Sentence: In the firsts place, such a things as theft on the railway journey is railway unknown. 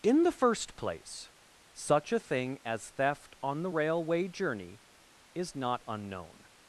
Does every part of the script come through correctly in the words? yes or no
no